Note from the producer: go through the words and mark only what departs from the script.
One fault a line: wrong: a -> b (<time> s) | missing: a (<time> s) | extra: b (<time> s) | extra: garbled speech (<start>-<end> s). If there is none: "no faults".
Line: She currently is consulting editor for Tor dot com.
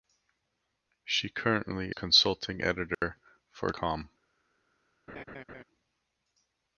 missing: is (1.9 s)
missing: Tor dot (3.7 s)